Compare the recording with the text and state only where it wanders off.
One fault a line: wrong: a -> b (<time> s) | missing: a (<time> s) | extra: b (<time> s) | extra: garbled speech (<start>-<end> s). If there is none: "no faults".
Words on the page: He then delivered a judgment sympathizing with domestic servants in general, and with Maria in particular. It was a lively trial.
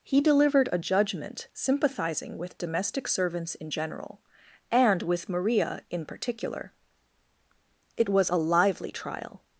missing: then (0.2 s)